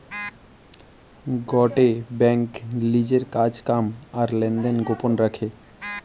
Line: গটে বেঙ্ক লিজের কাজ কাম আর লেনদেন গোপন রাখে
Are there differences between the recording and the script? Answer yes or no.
no